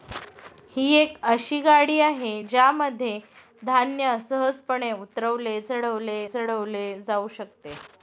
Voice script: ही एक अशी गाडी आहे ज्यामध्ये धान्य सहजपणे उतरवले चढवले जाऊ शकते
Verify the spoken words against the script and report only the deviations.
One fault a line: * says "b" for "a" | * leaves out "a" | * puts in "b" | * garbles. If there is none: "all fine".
* puts in "चढवले"